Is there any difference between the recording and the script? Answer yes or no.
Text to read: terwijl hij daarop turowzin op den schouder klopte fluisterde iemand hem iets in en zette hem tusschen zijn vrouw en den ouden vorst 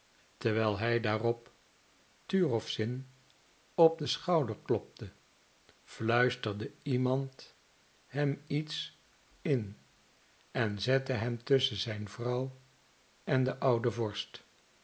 no